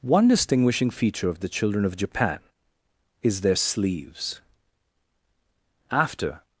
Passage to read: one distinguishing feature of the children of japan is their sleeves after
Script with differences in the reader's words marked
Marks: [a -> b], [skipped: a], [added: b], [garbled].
one distinguishing feature of the children of japan is their sleeves after